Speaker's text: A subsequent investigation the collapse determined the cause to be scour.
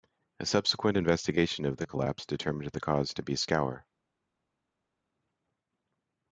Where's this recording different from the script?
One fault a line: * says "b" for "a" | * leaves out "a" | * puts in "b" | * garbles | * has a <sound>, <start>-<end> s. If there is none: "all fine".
* puts in "of"